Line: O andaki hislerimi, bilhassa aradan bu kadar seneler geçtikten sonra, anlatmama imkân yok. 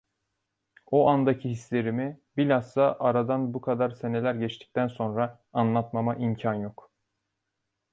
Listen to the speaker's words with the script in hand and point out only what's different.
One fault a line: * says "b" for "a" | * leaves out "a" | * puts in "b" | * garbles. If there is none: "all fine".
all fine